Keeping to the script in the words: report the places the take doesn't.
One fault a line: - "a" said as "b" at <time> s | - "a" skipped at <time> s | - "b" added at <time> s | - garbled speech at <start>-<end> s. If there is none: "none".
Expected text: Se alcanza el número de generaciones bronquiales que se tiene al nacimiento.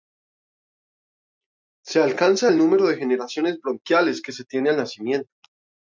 none